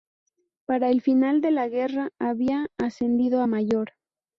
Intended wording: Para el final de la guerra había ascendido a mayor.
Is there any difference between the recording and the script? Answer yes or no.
no